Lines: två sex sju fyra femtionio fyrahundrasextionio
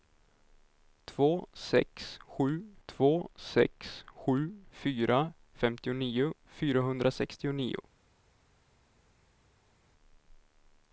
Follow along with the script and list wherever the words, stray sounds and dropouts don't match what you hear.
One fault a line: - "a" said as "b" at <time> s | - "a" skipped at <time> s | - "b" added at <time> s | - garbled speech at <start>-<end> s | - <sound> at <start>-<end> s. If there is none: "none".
- "två sex sju" added at 2.9 s